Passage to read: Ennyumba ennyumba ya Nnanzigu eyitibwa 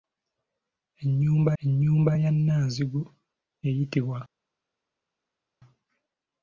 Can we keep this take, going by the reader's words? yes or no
yes